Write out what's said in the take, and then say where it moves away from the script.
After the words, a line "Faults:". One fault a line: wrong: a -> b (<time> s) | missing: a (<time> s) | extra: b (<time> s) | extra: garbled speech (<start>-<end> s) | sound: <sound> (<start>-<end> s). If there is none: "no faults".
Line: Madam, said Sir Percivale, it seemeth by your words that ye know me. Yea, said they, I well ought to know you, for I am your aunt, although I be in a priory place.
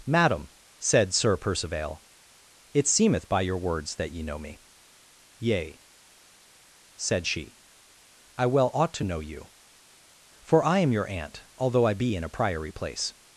Madam, said Sir Percivale, it seemeth by your words that ye know me. Yea, said she, I well ought to know you, for I am your aunt, although I be in a priory place.
Faults:
wrong: they -> she (7.3 s)